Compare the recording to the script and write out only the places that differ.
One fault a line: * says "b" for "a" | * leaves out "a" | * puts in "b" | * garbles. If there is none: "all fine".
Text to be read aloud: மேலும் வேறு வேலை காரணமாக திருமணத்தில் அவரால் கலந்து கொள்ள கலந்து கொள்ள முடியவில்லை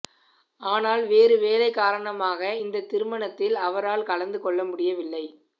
* says "ஆனால்" for "மேலும்"
* puts in "இந்த"
* leaves out "கலந்து கொள்ள"